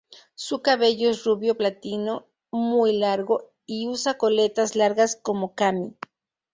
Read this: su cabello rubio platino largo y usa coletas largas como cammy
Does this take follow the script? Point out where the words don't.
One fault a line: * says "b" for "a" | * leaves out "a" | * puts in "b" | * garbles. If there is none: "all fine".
* puts in "es"
* puts in "muy"